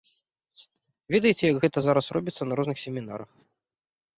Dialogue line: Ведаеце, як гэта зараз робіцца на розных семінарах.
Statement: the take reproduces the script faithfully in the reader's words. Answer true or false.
true